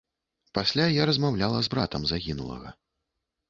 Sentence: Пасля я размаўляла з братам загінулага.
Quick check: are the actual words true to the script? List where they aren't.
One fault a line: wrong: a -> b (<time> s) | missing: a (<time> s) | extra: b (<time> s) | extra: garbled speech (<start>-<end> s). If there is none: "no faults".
no faults